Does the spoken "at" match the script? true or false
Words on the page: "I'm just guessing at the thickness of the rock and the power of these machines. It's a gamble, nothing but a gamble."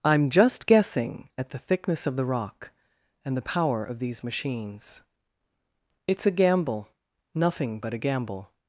true